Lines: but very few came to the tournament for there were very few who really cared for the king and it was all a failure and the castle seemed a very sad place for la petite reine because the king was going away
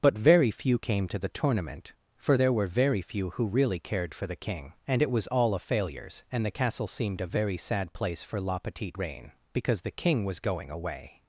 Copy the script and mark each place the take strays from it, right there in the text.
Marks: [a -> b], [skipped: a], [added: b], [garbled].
but very few came to the tournament for there were very few who really cared for the king and it was all a [failure -> failures] and the castle seemed a very sad place for la petite reine because the king was going away